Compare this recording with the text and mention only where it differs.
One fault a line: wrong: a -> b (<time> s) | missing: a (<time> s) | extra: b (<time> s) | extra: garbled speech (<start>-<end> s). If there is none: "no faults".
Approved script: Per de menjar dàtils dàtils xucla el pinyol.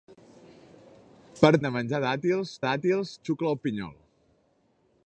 no faults